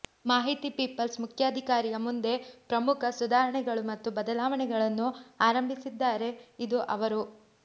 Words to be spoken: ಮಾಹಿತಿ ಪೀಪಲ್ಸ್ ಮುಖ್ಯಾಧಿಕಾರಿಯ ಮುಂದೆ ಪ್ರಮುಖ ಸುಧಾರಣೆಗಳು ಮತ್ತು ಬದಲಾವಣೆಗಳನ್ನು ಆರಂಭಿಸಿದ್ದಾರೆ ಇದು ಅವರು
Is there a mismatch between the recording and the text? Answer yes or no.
no